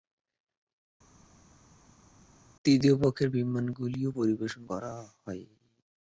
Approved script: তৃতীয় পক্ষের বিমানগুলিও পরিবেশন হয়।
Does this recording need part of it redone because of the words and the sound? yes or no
yes